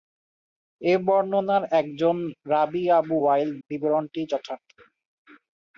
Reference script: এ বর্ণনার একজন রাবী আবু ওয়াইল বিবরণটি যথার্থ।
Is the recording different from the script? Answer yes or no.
no